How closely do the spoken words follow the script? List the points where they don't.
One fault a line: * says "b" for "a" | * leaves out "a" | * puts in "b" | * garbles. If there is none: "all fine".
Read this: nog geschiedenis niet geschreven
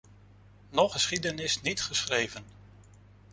all fine